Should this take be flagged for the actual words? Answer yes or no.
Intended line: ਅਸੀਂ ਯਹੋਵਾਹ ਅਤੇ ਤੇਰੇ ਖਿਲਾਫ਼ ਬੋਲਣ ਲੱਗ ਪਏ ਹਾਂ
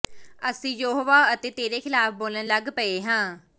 no